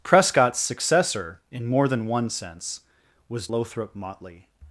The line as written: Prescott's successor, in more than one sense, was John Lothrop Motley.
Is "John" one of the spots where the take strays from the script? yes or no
yes